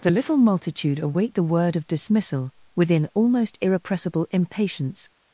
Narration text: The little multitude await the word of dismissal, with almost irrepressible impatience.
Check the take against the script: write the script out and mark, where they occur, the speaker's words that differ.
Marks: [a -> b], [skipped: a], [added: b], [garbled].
The little multitude await the word of dismissal, [with -> within] almost irrepressible impatience.